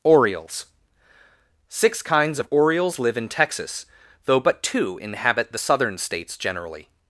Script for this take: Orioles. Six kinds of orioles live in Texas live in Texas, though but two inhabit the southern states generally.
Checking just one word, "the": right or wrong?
right